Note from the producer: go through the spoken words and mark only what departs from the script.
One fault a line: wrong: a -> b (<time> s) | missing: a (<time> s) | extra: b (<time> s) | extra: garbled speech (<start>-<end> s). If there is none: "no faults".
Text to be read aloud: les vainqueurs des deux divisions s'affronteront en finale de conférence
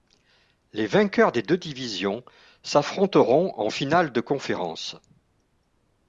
no faults